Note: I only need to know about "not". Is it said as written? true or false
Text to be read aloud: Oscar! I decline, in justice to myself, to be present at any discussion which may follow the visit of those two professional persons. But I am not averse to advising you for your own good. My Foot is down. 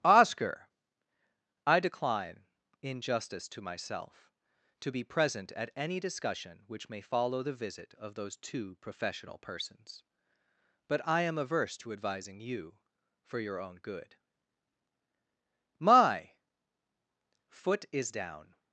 false